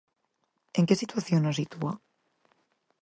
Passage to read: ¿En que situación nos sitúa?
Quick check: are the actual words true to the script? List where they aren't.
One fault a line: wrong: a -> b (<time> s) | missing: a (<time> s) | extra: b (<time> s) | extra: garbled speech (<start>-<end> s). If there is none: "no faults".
no faults